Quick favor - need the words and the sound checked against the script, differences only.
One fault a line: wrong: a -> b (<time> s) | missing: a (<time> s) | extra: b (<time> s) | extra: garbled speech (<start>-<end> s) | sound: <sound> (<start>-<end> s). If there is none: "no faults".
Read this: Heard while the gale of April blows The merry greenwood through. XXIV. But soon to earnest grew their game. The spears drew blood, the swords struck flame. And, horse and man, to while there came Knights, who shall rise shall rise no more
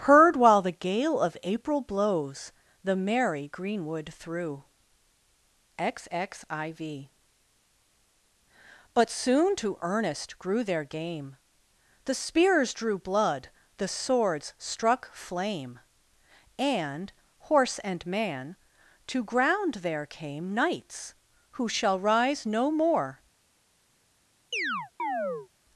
wrong: while -> ground (19.2 s)
missing: shall rise (22.4 s)
sound: chirp (24.5-25.5 s)